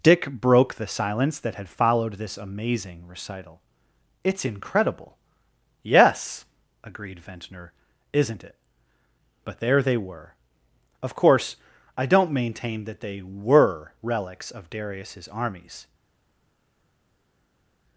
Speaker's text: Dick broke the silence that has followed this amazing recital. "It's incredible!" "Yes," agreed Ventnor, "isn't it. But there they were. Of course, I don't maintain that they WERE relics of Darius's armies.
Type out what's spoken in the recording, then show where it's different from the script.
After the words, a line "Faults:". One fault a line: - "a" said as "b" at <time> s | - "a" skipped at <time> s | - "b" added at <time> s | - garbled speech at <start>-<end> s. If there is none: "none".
Dick broke the silence that had followed this amazing recital. "It's incredible!" "Yes," agreed Ventnor, "isn't it. But there they were. Of course, I don't maintain that they WERE relics of Darius's armies.
Faults:
- "has" said as "had" at 1.6 s